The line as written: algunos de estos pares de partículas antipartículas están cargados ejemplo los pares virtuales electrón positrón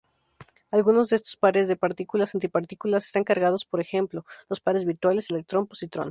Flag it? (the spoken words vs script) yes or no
yes